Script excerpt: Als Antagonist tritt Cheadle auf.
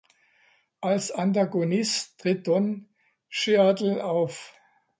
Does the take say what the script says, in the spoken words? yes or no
no